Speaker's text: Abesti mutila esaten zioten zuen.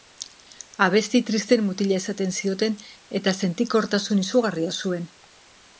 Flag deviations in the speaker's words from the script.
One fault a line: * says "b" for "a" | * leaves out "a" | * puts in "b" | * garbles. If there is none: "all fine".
* puts in "tristeen"
* puts in "eta sentikortasun izugarria"